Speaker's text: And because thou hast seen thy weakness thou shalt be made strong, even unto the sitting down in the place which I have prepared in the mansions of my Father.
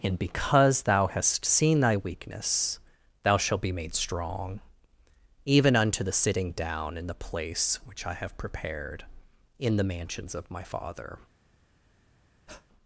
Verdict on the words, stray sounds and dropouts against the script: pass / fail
fail